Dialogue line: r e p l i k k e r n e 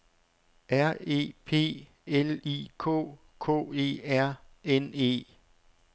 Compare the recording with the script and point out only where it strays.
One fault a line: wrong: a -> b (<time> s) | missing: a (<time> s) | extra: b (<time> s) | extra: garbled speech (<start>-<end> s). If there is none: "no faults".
no faults